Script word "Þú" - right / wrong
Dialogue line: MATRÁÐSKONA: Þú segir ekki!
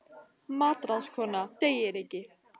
wrong